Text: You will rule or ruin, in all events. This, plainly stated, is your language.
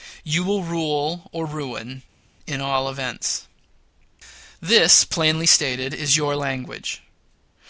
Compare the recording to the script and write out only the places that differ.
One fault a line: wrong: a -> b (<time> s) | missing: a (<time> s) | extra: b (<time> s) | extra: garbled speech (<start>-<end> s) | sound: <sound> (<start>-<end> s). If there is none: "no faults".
no faults